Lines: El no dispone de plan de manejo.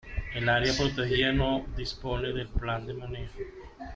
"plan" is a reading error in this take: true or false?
false